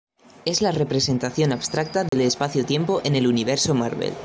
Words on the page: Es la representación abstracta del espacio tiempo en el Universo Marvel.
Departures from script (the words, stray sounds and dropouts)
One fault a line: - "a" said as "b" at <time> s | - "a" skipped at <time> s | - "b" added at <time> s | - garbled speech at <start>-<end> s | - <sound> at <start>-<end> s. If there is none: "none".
- dropout at 2.1-2.1 s